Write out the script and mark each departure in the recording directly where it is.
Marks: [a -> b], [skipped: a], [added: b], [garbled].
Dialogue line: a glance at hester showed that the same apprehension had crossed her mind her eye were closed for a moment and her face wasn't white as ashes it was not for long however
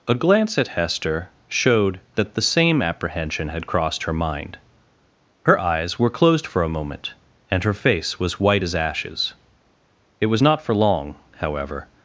a glance at hester showed that the same apprehension had crossed her mind her [eye -> eyes] were closed for a moment and her face [wasn't -> was] white as ashes it was not for long however